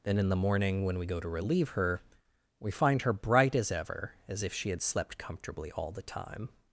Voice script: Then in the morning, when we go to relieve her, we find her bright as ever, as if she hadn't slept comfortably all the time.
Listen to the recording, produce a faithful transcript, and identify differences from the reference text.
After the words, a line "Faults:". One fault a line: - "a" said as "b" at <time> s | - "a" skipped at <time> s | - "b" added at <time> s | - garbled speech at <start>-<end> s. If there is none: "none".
Then in the morning, when we go to relieve her, we find her bright as ever, as if she had slept comfortably all the time.
Faults:
- "hadn't" said as "had" at 4.7 s